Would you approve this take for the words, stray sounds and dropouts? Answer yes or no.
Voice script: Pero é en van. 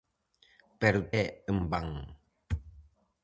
yes